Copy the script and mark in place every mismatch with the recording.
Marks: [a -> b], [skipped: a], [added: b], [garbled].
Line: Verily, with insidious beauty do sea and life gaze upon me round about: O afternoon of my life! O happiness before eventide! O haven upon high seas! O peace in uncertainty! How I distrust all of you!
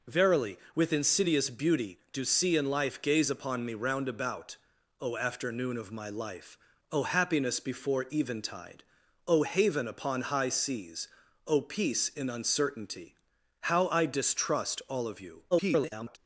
Verily, with insidious beauty do sea and life gaze upon me round about: O afternoon of my life! O happiness before eventide! O haven upon high seas! O peace in uncertainty! How I distrust all of you! [garbled]